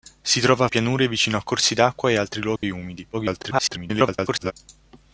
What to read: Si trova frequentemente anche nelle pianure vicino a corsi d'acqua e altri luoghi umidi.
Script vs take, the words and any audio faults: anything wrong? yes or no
yes